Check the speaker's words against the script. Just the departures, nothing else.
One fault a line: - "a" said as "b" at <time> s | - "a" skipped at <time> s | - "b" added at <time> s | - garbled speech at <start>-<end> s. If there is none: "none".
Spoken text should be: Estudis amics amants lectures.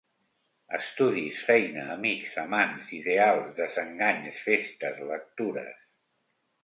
- "feina" added at 1.5 s
- "ideals desenganys festes" added at 3.0 s